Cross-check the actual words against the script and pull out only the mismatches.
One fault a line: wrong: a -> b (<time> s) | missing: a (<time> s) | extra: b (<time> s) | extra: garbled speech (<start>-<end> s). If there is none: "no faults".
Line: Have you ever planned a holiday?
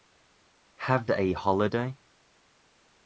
missing: you ever planned (1.1 s)